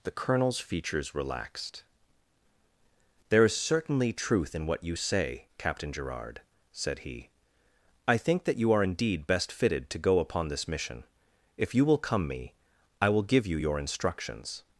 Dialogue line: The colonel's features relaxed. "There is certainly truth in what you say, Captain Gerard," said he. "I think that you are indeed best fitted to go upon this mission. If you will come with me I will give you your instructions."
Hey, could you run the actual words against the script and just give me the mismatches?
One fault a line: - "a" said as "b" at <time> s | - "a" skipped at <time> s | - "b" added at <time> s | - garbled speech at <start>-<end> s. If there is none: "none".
- "with" skipped at 12.3 s